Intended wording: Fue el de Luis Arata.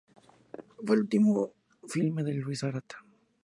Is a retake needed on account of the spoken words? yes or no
yes